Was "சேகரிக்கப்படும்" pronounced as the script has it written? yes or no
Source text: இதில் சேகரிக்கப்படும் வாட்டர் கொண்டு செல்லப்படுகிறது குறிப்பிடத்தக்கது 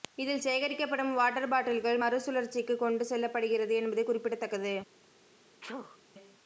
yes